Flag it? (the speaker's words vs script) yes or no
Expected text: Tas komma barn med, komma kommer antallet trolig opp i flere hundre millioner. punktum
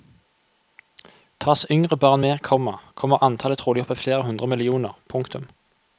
yes